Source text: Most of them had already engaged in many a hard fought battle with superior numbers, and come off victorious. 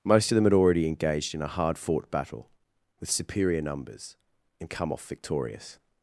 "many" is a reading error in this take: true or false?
true